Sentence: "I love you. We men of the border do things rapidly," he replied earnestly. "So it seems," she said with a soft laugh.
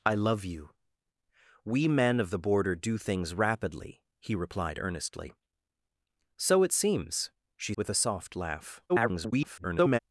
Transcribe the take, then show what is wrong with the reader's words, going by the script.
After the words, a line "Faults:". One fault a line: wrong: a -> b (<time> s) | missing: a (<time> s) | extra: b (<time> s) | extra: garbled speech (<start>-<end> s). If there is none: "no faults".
"I love you. We men of the border do things rapidly," he replied earnestly. "So it seems," she with a soft laugh. [garbled]
Faults:
missing: said (7.7 s)
extra: garbled speech (8.9-10.0 s)